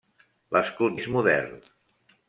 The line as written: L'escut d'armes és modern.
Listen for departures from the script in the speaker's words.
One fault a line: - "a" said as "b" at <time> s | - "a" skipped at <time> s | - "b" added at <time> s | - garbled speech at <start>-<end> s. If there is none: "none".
- "d'armes" skipped at 1.0 s